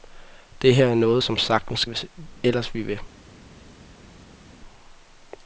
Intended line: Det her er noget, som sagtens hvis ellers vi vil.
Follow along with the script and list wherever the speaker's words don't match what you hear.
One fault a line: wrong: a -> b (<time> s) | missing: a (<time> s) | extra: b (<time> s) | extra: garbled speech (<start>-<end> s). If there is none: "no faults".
no faults